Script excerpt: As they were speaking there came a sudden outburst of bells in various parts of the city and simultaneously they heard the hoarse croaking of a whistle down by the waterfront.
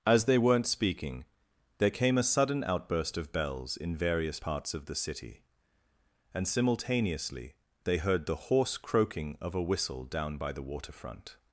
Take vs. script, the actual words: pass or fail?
fail